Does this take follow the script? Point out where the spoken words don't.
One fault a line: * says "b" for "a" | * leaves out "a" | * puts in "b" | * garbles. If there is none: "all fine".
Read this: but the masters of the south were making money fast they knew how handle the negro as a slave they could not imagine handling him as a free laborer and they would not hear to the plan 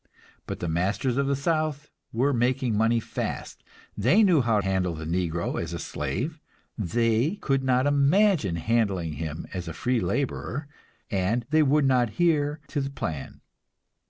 all fine